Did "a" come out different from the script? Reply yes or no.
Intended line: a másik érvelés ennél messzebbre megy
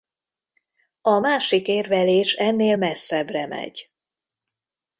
no